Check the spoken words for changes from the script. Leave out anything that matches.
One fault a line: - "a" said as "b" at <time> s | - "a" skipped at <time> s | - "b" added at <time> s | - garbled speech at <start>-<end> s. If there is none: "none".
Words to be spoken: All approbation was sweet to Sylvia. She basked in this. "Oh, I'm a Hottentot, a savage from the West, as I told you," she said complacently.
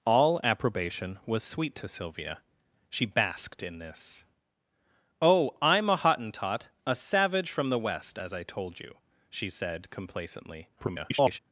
- garbled speech at 10.8-11.4 s